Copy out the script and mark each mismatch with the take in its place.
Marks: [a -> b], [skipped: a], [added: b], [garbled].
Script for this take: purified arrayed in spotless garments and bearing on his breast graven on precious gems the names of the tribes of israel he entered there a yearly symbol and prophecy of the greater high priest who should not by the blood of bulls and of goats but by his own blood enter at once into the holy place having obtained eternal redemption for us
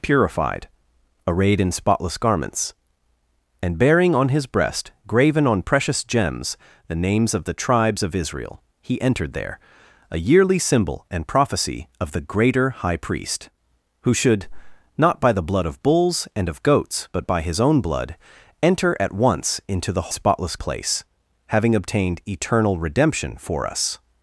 purified arrayed in spotless garments and bearing on his breast graven on precious gems the names of the tribes of israel he entered there a yearly symbol and prophecy of the greater high priest who should not by the blood of bulls and of goats but by his own blood enter at once into the [holy -> spotless] place having obtained eternal redemption for us